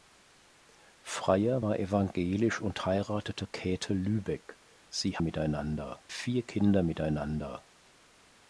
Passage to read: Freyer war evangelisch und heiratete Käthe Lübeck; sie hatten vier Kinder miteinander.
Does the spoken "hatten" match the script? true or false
false